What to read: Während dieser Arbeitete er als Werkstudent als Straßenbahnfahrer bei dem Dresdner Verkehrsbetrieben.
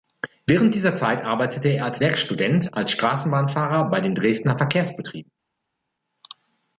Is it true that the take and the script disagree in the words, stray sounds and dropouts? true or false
true